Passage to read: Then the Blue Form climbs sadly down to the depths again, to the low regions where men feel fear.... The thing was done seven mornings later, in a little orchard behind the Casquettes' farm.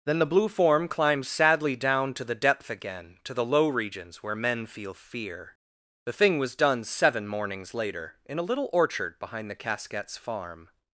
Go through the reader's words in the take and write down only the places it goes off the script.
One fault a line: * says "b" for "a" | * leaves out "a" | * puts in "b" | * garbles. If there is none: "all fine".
* says "depth" for "depths"